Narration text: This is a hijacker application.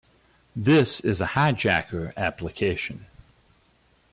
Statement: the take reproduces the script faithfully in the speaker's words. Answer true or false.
true